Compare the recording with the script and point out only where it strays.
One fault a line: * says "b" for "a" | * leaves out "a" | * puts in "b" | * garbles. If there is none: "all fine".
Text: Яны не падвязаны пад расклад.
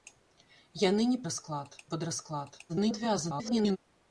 * says "расклад" for "падвязаны"
* garbles